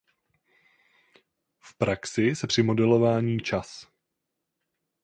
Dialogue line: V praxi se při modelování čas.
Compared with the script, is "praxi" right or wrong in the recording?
right